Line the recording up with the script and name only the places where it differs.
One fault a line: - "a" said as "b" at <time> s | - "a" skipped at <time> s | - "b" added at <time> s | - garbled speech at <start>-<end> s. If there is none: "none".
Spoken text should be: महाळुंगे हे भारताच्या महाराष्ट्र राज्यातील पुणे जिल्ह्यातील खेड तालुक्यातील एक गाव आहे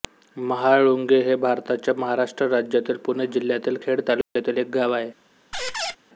none